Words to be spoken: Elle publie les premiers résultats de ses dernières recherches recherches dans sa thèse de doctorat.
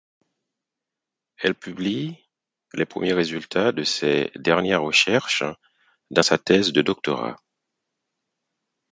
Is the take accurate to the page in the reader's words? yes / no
no